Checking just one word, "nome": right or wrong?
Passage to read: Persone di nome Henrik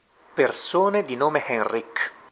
right